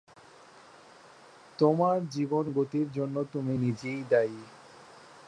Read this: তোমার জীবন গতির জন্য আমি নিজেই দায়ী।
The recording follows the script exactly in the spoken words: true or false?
false